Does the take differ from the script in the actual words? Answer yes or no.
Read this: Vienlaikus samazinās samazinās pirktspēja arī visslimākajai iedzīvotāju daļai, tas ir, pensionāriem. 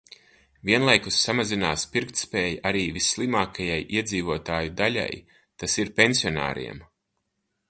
yes